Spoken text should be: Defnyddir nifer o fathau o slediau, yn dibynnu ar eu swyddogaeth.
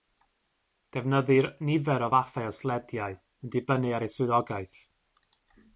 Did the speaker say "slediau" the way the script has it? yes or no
yes